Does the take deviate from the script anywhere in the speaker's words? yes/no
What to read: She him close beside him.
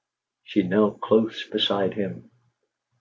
yes